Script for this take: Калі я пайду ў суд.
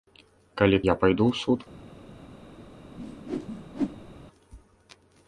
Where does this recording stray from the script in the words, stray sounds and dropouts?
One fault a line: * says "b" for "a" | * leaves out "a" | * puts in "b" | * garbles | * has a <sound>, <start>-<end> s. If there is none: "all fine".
* has a whoosh, 3.0-4.1 s